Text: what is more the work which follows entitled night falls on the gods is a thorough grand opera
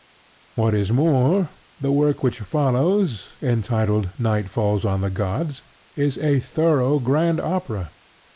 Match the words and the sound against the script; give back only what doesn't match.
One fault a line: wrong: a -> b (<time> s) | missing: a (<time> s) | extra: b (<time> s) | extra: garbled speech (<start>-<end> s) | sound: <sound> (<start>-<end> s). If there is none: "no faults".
no faults